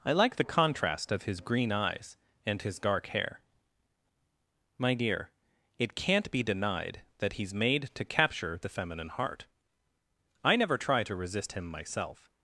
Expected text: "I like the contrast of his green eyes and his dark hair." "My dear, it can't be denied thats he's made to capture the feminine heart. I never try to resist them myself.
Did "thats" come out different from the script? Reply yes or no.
yes